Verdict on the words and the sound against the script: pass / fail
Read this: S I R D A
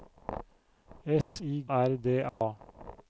fail